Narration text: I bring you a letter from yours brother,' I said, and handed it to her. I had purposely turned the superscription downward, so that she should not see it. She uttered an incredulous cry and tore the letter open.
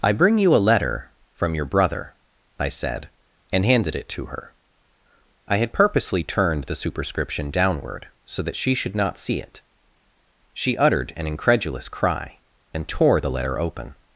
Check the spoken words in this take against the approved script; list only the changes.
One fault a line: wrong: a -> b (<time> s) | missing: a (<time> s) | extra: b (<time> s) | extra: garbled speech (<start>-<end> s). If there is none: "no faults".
wrong: yours -> your (1.5 s)